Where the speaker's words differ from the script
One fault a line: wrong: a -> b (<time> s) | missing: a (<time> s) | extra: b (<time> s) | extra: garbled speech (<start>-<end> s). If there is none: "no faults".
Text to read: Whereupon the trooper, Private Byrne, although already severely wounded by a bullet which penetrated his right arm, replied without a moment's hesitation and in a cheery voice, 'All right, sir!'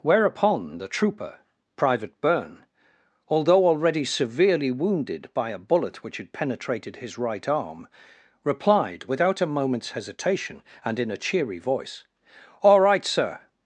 extra: had (6.2 s)